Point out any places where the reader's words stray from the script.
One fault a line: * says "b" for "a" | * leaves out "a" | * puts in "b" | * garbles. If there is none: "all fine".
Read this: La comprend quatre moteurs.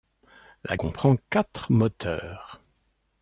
all fine